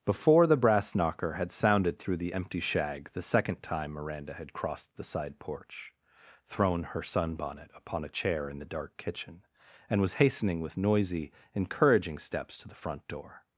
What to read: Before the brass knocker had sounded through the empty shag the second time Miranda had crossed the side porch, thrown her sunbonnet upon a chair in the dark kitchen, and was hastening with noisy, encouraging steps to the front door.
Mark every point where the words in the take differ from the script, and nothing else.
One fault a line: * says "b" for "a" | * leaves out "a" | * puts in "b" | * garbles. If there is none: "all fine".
all fine